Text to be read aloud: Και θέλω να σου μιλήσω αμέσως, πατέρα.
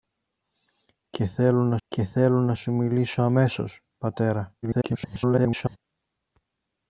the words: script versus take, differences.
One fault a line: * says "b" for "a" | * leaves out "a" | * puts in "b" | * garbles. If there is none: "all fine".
* puts in "και θέλω να"
* garbles